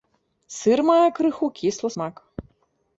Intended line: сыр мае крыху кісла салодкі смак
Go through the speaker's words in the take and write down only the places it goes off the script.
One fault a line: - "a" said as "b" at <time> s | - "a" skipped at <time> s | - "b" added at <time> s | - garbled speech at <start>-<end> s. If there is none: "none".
- "салодкі" skipped at 1.9 s